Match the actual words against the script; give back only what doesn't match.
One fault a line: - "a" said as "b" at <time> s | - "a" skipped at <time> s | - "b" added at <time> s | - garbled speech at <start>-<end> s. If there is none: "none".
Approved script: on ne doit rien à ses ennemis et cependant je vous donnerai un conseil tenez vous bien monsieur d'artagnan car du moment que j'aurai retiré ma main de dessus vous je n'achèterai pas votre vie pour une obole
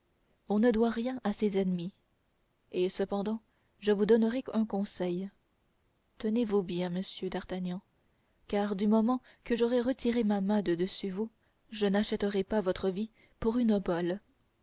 none